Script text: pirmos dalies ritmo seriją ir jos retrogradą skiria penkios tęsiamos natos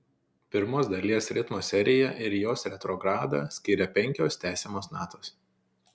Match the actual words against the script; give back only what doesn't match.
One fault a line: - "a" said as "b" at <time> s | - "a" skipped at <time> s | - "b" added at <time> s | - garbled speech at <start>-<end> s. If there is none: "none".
none